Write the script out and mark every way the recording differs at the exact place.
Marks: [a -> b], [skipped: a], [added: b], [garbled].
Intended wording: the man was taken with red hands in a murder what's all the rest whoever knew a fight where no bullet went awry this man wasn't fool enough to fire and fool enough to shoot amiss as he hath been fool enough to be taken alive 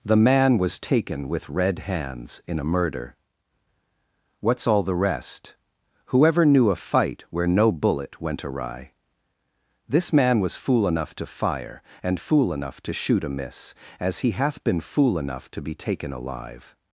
the man was taken with red hands in a murder what's all the rest whoever knew a fight where no bullet went awry this man [wasn't -> was] fool enough to fire and fool enough to shoot amiss as he hath been fool enough to be taken alive